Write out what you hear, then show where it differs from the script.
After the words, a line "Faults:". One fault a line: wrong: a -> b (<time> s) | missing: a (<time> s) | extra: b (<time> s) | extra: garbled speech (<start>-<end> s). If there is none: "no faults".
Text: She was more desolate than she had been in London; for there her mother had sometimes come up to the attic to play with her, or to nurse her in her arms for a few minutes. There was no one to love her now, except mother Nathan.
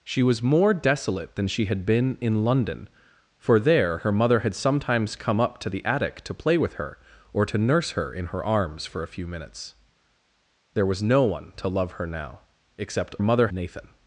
She was more desolate than she had been in London; for there her mother had sometimes come up to the attic to play with her, or to nurse her in her arms for a few minutes. There was no one to love her now, except mother Nathan.
Faults:
no faults